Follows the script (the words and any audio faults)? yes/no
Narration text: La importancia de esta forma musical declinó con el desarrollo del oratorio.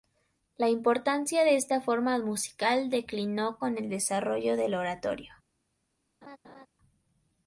no